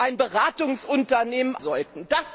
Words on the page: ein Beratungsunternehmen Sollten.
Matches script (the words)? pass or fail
pass